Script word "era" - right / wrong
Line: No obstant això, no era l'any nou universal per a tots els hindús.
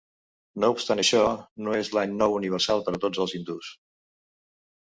wrong